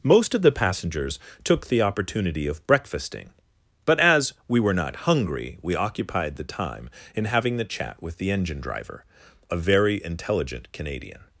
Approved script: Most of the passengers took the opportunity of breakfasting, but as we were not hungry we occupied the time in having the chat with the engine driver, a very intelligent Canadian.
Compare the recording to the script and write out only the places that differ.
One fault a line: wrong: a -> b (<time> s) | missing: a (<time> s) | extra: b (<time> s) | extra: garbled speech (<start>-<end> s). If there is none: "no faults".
no faults